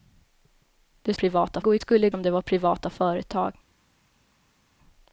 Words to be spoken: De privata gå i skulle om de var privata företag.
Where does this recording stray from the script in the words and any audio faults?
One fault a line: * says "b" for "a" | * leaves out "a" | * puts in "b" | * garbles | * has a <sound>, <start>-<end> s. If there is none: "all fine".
all fine